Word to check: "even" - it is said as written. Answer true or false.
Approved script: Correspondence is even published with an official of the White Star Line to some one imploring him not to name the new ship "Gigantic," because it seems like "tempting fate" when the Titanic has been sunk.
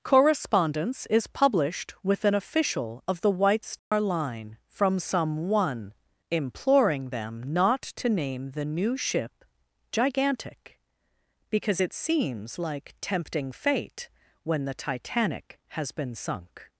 false